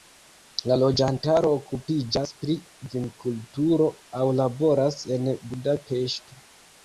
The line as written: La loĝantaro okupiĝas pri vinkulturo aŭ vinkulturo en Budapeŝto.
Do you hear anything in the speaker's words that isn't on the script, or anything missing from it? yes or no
yes